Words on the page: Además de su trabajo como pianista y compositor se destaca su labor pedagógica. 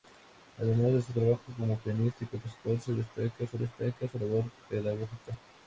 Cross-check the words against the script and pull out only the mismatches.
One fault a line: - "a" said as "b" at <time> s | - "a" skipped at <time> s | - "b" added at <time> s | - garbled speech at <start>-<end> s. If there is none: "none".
- "destaca su" added at 3.6 s